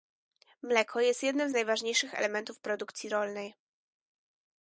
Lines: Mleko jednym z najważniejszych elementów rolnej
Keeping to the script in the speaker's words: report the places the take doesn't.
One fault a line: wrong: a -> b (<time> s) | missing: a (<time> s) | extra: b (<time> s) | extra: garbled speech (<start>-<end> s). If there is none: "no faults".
extra: jest (1.0 s)
extra: produkcji (2.6 s)